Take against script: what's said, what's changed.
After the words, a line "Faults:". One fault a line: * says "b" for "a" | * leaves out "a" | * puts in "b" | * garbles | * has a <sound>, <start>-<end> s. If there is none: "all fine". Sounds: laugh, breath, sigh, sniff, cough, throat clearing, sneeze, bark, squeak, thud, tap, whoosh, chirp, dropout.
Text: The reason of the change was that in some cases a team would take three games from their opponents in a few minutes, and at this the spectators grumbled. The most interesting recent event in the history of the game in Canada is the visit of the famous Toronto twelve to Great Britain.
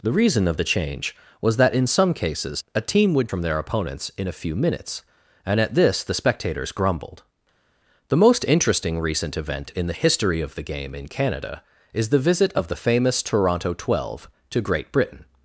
The reason of the change was that in some cases a team would from their opponents in a few minutes, and at this the spectators grumbled. The most interesting recent event in the history of the game in Canada is the visit of the famous Toronto twelve to Great Britain.
Faults:
* leaves out "take three games"